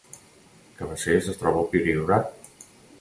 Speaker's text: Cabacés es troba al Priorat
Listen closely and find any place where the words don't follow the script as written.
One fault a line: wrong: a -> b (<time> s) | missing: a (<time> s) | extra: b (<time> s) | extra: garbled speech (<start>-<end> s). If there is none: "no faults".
no faults